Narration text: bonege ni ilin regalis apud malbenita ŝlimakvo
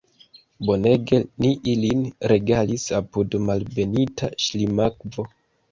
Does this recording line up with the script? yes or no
yes